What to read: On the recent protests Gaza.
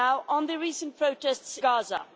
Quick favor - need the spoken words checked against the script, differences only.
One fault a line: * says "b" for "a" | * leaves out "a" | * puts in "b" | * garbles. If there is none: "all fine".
all fine